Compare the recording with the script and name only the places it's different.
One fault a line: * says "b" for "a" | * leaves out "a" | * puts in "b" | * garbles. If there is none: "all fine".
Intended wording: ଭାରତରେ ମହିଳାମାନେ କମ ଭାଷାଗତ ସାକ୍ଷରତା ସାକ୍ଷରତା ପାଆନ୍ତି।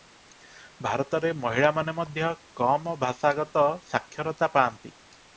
* puts in "ମଧ୍ୟ"
* leaves out "ସାକ୍ଷରତା"